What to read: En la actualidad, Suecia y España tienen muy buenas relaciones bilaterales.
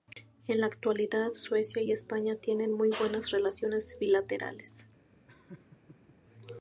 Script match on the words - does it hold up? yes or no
yes